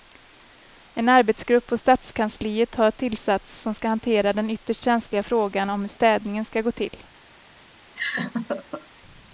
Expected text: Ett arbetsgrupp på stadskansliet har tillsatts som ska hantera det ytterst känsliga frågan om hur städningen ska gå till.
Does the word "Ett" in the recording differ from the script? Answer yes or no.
yes